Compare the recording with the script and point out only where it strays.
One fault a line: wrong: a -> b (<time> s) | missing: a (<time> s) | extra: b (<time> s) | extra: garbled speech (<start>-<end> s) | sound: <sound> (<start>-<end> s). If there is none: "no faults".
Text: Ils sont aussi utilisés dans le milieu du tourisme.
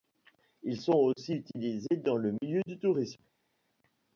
no faults